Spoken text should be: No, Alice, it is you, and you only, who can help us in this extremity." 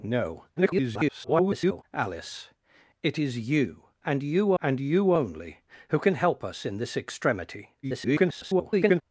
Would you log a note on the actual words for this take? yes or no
yes